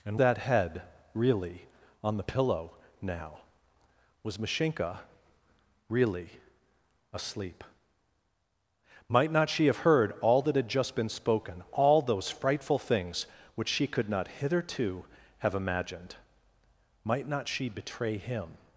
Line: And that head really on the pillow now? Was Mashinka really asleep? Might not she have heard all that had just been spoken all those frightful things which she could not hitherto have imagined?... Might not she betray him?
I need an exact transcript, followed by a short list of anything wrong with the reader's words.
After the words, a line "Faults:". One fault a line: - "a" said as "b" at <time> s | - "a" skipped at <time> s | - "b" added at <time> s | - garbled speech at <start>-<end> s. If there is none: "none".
And that head really on the pillow now? Was Mashinka really asleep? Might not she have heard all that had just been spoken all those frightful things which she could not hitherto have imagined?... Might not she betray him?
Faults:
none